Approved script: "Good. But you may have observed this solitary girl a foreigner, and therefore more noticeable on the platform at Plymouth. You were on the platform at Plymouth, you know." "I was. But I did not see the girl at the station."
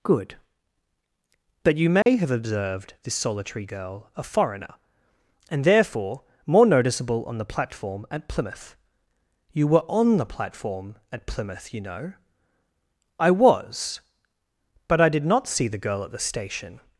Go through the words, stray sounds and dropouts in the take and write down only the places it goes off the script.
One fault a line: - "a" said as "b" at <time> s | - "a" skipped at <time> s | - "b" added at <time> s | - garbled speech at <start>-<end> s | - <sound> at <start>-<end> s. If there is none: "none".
- dropout at 2.0-2.1 s